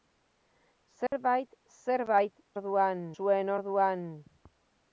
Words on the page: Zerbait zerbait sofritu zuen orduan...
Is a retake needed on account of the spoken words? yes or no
yes